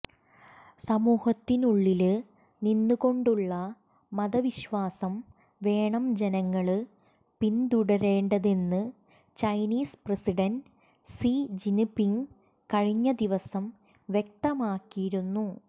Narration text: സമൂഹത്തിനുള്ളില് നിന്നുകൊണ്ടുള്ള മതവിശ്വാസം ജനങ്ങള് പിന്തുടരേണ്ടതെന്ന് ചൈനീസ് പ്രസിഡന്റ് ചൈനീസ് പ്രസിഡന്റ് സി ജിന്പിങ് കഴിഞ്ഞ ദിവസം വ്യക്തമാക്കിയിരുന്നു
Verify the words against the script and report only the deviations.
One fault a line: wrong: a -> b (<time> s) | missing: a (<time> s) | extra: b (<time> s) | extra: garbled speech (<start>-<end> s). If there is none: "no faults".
extra: വേണം (5.6 s)
missing: ചൈനീസ് പ്രസിഡന്റ് (10.7 s)